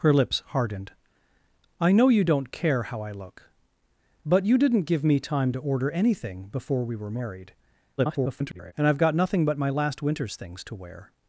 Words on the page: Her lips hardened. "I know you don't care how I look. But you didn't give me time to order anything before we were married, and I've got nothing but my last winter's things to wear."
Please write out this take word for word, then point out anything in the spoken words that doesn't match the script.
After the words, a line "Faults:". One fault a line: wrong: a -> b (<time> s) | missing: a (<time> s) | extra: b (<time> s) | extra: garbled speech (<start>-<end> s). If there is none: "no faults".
Her lips hardened. "I know you don't care how I look. But you didn't give me time to order anything before we were married, [garbled] and I've got nothing but my last winter's things to wear."
Faults:
extra: garbled speech (8.0-8.7 s)